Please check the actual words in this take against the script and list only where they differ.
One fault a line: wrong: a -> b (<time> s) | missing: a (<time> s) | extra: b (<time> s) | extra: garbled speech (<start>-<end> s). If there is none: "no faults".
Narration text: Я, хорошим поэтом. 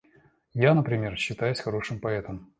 extra: например считаюсь (0.7 s)